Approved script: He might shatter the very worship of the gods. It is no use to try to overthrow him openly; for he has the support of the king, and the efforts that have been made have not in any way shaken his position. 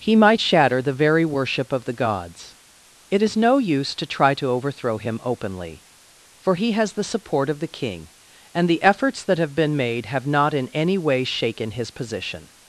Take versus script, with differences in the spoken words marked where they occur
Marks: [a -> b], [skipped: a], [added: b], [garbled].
He might shatter the very worship of the gods. It is no use to try to overthrow him openly; for he has the support of the king, and the efforts that have been made have not in any way shaken his position.